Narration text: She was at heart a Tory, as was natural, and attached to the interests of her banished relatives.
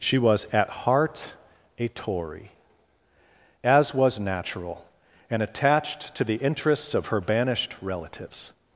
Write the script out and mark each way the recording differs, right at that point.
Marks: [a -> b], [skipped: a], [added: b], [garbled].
She was at heart a Tory, as was natural, and attached to the interests of her banished relatives.